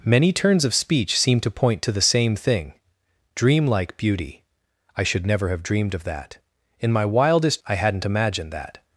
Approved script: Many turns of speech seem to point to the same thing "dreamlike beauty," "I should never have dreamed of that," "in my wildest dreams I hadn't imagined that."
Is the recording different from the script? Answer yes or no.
yes